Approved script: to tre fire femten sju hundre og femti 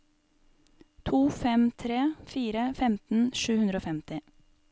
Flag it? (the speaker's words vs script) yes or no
yes